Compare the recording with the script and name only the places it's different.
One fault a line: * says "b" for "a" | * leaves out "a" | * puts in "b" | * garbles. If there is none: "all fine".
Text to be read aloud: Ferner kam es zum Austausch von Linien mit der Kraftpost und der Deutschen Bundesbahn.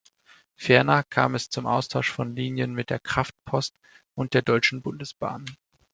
all fine